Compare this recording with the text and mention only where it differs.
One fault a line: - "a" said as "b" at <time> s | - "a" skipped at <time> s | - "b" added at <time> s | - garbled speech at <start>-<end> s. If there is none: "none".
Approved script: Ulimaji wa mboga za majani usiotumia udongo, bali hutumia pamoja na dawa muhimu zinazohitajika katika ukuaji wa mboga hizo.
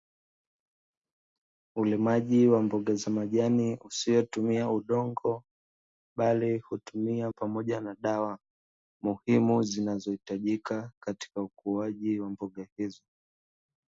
none